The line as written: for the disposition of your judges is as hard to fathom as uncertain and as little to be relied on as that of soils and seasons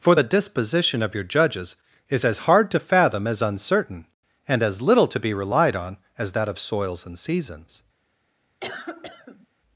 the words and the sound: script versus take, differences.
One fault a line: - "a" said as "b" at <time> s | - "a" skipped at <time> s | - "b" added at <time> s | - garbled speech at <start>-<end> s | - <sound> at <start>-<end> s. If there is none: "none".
- cough at 8.6-9.5 s